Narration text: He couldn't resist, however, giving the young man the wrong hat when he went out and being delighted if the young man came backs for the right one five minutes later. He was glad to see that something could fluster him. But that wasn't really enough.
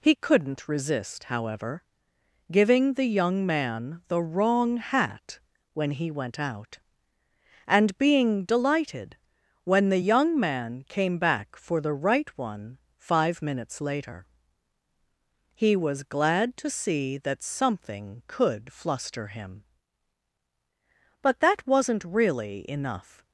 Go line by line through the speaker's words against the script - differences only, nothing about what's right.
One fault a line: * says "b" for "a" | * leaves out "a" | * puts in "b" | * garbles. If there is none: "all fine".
* says "when" for "if"
* says "back" for "backs"